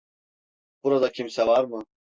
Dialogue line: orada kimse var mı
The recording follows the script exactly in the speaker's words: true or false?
false